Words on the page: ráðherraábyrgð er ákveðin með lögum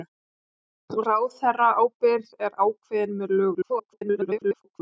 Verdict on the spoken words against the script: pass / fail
fail